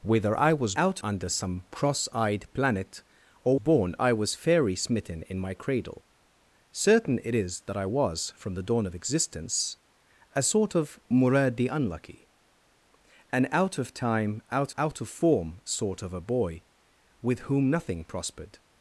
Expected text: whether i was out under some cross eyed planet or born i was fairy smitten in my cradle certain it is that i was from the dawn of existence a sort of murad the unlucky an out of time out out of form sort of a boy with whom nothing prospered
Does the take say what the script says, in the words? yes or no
yes